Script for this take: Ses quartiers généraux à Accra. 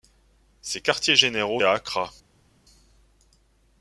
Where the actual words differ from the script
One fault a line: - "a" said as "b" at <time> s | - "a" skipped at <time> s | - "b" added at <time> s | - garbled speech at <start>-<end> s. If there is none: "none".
none